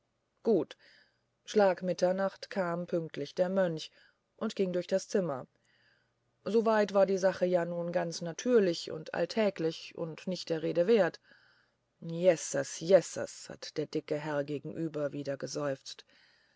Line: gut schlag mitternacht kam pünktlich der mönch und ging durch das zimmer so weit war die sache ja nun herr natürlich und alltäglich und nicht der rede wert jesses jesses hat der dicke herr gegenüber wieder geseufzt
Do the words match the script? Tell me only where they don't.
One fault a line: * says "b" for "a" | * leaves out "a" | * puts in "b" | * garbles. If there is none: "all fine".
* says "ganz" for "herr"